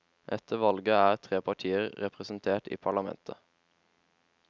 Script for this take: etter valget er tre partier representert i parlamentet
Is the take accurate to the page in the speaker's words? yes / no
yes